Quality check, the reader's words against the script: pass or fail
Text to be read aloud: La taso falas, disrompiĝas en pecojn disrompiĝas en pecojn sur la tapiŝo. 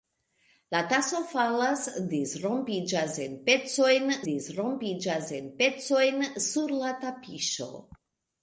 pass